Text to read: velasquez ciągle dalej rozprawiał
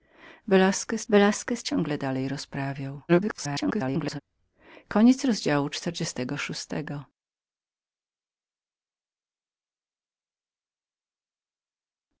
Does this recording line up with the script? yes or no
no